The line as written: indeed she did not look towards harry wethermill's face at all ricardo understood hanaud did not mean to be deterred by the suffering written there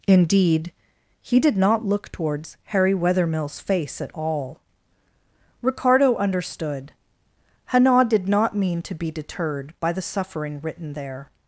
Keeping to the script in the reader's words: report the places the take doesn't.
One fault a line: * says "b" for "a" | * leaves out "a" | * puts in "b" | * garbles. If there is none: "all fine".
* says "he" for "she"